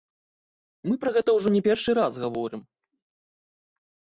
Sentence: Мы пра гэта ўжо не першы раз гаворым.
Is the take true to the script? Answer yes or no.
yes